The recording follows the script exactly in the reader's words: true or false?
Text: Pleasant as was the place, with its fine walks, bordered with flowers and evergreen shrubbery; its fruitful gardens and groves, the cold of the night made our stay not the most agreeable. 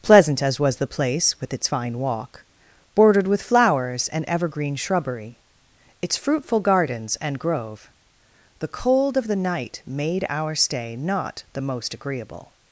false